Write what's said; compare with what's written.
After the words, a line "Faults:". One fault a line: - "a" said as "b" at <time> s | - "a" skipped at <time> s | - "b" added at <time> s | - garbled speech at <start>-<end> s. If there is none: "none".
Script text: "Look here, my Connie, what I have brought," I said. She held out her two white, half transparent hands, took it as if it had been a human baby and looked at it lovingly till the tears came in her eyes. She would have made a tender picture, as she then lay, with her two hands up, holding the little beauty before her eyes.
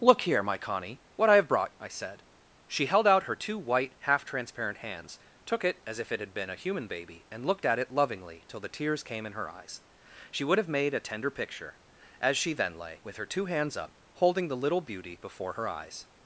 "Look here, my Connie, what I have brought," I said. She held out her two white, half transparent hands, took it as if it had been a human baby and looked at it lovingly till the tears came in her eyes. She would have made a tender picture, as she then lay, with her two hands up, holding the little beauty before her eyes.
Faults:
none